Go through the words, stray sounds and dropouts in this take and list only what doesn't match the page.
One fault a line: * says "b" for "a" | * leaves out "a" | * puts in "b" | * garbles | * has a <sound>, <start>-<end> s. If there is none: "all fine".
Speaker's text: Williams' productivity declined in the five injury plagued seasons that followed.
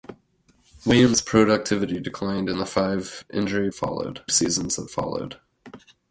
* says "followed" for "plagued"